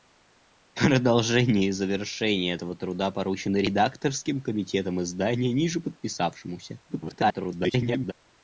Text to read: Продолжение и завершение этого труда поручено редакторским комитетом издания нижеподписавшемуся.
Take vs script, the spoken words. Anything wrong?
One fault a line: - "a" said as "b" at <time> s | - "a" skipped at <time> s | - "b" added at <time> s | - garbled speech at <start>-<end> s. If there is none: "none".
- garbled speech at 6.9-8.1 s